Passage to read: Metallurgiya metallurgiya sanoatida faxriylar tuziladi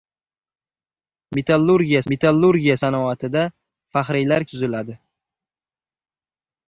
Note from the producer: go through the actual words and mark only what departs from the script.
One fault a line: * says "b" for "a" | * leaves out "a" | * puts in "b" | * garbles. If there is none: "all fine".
all fine